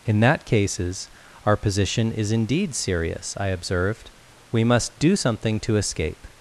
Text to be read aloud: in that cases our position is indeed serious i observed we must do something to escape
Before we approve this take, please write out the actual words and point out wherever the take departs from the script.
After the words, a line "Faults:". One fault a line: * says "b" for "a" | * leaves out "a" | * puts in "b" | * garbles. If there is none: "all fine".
in that cases our position is indeed serious i observed we must do something to escape
Faults:
all fine